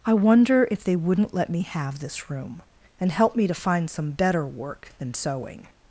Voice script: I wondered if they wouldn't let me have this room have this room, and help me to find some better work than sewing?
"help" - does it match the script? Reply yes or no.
yes